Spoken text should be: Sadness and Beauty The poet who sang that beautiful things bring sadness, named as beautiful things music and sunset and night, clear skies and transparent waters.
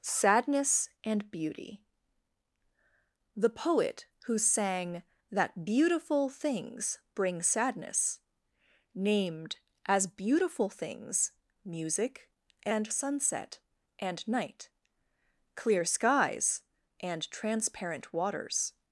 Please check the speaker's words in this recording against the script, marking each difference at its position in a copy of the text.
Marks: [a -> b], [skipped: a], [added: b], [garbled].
Sadness and Beauty The poet who sang that beautiful things bring sadness, named as beautiful things music and sunset and night, clear skies and transparent waters.